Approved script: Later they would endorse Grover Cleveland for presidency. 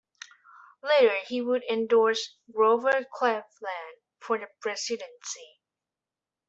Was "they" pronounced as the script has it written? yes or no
no